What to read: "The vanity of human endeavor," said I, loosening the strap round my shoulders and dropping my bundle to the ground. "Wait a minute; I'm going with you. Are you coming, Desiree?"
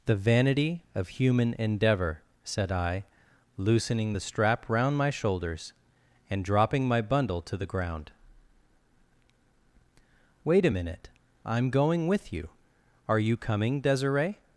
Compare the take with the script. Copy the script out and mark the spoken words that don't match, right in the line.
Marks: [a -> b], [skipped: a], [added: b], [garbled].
"The vanity of human endeavor," said I, loosening the strap round my shoulders and dropping my bundle to the ground. "Wait a minute; I'm going with you. Are you coming, Desiree?"